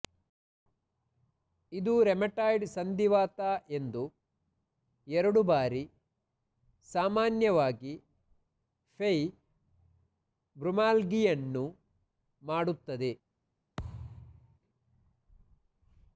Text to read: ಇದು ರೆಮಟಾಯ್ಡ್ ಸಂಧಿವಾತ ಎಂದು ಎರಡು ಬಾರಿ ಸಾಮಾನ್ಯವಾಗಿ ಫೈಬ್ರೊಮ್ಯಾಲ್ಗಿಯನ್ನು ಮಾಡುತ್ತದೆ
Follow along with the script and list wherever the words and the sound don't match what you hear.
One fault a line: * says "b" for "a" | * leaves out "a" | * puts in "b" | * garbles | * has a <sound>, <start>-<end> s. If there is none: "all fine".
* has a thud, 13.8-14.6 s